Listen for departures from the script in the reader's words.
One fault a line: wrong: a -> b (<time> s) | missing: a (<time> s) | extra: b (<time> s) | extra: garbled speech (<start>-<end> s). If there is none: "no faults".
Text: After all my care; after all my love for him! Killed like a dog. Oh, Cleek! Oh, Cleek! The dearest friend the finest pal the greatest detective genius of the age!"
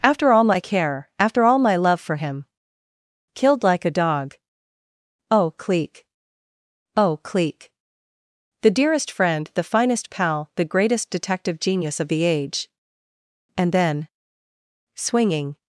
extra: And then swinging (13.6 s)